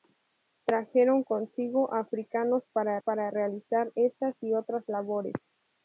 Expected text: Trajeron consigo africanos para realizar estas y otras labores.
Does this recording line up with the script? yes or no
no